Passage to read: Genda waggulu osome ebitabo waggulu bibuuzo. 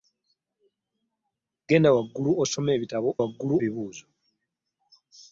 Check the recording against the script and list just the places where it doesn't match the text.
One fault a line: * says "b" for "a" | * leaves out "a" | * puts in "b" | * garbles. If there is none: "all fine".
all fine